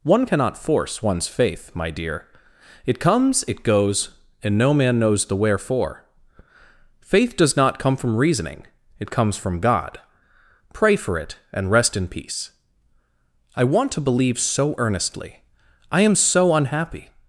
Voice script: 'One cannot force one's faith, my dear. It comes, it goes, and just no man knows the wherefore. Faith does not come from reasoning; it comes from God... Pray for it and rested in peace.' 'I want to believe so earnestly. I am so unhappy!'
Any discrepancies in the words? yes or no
yes